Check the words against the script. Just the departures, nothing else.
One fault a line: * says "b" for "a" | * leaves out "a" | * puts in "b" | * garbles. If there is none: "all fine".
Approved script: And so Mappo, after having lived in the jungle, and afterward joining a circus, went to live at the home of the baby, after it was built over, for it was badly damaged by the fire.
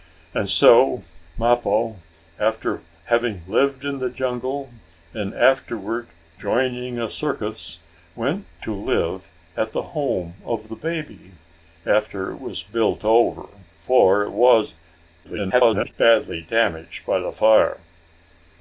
* garbles